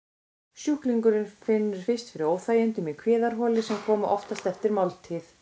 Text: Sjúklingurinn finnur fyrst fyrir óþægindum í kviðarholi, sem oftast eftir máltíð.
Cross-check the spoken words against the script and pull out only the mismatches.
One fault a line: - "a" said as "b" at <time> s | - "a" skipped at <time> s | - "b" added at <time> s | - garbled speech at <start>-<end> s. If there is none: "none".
- "koma" added at 3.9 s